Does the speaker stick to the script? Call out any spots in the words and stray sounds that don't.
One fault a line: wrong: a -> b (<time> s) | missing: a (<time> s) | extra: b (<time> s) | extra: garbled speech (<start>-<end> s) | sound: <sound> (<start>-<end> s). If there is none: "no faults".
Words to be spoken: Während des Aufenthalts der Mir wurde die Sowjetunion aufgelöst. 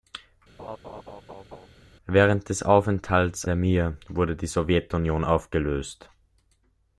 sound: laugh (0.6-1.7 s)